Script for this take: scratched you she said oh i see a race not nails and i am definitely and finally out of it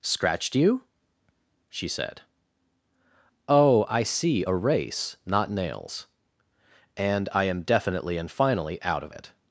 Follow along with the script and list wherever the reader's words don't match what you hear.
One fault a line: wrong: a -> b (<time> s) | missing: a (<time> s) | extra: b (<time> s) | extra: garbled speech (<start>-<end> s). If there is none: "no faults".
no faults